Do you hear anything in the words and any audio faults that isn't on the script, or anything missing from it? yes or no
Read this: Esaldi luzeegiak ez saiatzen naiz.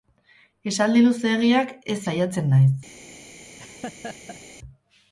yes